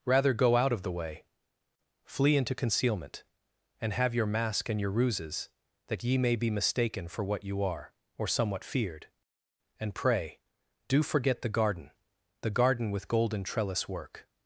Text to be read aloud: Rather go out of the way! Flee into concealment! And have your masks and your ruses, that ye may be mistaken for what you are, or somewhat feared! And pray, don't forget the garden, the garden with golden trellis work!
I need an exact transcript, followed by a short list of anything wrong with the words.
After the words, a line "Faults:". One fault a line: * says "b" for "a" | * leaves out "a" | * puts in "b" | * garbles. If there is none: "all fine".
Rather go out of the way! Flee into concealment! And have your mask and your ruses, that ye may be mistaken for what you are, or somewhat feared! And pray, do forget the garden, the garden with golden trellis work!
Faults:
* says "mask" for "masks"
* says "do" for "don't"